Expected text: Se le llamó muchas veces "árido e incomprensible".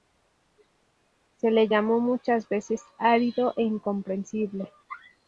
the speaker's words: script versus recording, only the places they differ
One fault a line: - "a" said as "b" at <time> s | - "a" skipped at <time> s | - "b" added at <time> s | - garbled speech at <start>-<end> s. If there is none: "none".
none